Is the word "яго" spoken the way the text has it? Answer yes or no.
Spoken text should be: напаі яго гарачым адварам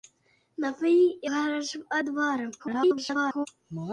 no